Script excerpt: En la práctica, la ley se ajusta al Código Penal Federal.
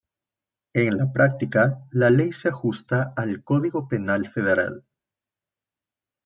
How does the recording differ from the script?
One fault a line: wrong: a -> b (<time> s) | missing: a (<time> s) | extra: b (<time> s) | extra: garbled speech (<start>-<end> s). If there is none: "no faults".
no faults